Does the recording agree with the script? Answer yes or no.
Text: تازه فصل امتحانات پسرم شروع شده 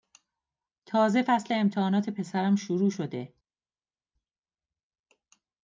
yes